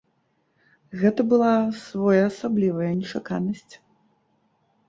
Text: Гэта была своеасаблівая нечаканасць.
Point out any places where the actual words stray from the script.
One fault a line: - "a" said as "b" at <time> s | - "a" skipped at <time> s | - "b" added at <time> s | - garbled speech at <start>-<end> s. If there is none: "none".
none